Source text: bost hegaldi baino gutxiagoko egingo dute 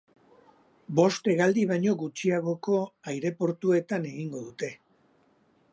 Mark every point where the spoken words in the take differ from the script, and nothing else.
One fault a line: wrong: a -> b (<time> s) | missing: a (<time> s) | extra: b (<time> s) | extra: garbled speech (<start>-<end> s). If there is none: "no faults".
extra: aireportuetan (3.1 s)